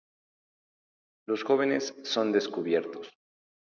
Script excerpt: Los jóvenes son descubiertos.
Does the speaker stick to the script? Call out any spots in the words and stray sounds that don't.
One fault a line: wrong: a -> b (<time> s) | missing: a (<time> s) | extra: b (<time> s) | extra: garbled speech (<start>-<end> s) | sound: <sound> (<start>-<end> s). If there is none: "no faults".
no faults